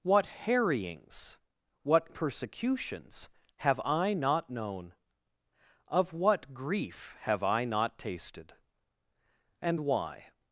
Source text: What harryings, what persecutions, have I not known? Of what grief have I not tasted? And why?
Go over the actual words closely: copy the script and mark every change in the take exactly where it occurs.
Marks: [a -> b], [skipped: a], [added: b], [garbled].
What harryings, what persecutions, have I not known? Of what grief have I not tasted? And why?